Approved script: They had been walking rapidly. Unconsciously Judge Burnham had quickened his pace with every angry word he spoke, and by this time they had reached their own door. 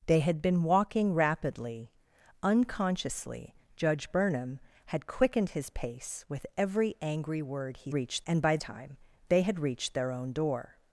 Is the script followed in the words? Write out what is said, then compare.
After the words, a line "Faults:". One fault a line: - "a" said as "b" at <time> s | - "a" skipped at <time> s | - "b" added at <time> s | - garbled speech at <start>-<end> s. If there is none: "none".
They had been walking rapidly. Unconsciously Judge Burnham had quickened his pace with every angry word he reached, and by time they had reached their own door.
Faults:
- "spoke" said as "reached" at 7.9 s
- "this" skipped at 8.6 s